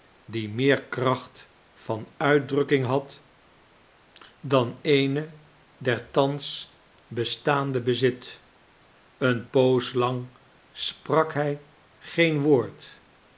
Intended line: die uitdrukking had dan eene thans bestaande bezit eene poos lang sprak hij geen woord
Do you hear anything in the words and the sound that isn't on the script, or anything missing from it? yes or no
yes